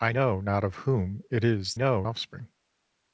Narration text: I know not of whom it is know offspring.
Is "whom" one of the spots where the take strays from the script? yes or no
no